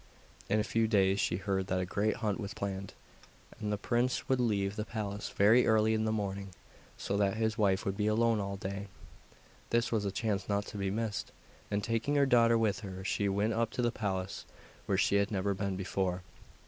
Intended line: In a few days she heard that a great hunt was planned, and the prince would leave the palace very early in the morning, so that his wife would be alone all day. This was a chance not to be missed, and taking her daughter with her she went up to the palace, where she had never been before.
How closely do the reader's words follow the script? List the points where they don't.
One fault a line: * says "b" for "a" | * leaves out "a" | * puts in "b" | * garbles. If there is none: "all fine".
all fine